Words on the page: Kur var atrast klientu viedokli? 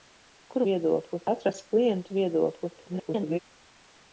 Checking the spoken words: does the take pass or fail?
fail